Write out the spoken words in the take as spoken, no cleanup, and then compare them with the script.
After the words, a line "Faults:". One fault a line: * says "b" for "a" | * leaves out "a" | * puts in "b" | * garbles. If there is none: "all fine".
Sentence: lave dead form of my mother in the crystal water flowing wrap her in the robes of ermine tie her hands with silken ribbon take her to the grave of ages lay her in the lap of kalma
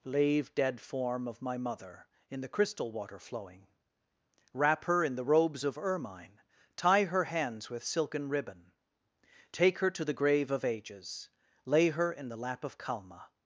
lave dead form of my mother in the crystal water flowing wrap her in the robes of ermine tie her hands with silken ribbon take her to the grave of ages lay her in the lap of kalma
Faults:
all fine